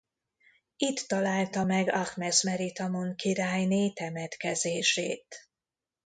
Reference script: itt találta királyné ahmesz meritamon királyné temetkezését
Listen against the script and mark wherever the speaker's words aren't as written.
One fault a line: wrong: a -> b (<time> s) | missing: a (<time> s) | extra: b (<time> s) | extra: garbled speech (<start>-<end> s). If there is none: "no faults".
wrong: királyné -> meg (1.6 s)